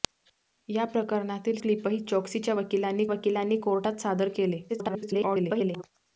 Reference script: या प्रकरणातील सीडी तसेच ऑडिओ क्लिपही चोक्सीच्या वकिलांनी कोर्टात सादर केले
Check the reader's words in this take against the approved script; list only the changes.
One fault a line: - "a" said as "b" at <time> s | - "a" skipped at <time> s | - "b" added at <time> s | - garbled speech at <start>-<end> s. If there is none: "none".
- "सीडी तसेच ऑडिओ" skipped at 1.6 s
- "वकिलांनी" added at 3.1 s
- garbled speech at 4.7-5.8 s